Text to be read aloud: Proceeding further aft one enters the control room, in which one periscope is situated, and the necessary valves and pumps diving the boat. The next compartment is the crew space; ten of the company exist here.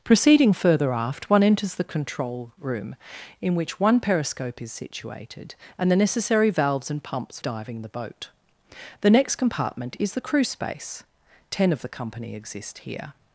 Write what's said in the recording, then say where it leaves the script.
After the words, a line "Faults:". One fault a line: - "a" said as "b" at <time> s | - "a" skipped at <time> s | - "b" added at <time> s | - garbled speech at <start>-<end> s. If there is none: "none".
Proceeding further aft one enters the control room, in which one periscope is situated, and the necessary valves and pumps diving the boat. The next compartment is the crew space; ten of the company exist here.
Faults:
none